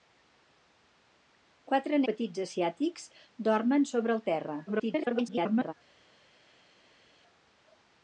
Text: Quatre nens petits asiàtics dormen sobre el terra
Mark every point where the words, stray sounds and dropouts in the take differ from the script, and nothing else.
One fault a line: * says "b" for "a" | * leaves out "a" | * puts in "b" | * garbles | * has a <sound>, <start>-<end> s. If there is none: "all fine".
* leaves out "nens"
* garbles